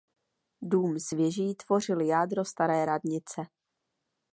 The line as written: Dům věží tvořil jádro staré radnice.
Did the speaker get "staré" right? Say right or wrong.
right